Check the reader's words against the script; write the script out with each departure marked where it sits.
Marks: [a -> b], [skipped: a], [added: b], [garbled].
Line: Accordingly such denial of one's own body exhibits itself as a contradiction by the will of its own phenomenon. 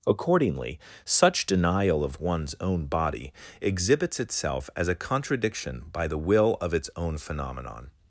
Accordingly such denial of one's own body exhibits itself as a contradiction by the will of its own phenomenon.